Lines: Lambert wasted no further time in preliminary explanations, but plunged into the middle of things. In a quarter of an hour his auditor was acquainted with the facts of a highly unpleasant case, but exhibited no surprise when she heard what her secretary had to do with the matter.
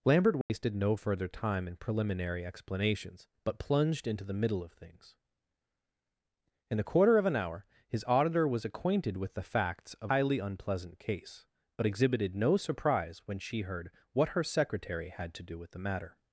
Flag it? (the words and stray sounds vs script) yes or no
yes